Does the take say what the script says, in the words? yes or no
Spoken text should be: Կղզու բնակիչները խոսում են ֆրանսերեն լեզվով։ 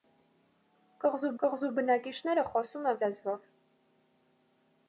no